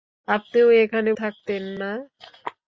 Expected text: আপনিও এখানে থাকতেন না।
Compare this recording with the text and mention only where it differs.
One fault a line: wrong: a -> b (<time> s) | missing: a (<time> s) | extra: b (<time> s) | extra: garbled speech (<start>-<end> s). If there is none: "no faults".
no faults